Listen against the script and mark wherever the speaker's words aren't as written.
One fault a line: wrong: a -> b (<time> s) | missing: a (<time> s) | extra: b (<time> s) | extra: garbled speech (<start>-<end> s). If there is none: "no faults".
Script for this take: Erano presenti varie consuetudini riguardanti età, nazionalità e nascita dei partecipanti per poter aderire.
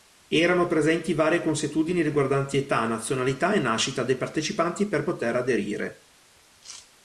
no faults